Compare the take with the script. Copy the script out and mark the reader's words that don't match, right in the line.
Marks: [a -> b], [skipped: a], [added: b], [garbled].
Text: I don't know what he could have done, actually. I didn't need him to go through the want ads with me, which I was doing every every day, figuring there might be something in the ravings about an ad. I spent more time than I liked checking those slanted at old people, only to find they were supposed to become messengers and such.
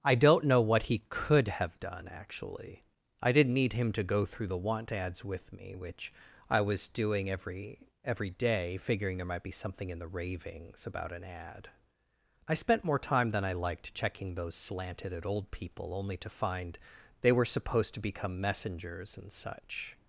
I don't know what he could have done, actually. I didn't need him to go through the want ads with me, which I was doing every every day, figuring there might be something in the ravings about an ad. I spent more time than I liked checking those slanted at old people, only to find they were supposed to become messengers and such.